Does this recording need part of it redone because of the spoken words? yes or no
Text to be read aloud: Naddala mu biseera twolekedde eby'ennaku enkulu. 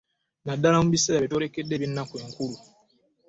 yes